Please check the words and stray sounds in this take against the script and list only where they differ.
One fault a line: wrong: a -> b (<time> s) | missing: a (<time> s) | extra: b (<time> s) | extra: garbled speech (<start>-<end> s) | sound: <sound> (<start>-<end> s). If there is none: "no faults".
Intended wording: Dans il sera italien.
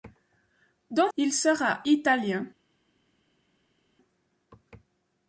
no faults